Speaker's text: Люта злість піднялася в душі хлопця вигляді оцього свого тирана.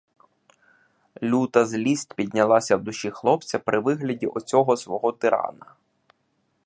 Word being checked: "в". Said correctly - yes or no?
yes